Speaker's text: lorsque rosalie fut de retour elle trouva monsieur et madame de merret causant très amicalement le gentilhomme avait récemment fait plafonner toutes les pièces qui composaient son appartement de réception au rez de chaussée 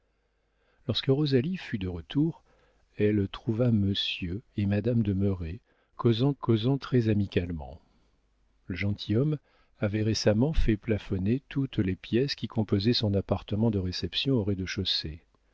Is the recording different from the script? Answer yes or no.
yes